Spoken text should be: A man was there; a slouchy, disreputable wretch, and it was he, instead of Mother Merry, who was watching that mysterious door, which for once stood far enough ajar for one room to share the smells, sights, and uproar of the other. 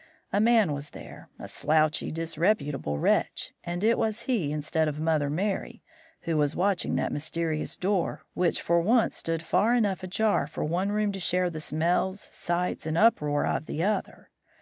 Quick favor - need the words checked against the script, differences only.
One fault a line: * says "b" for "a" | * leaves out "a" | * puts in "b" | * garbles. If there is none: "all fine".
all fine